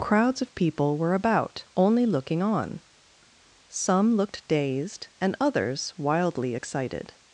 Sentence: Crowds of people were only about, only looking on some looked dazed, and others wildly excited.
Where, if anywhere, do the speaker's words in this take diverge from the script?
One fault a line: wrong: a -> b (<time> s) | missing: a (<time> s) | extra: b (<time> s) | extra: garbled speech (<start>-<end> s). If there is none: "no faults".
missing: only (1.1 s)